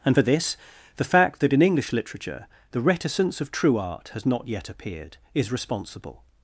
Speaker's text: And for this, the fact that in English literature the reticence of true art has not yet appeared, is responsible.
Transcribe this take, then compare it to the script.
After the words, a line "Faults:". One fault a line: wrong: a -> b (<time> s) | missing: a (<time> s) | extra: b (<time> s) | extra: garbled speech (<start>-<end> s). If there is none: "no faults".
And for this, the fact that in English literature the reticence of true art has not yet appeared, is responsible.
Faults:
no faults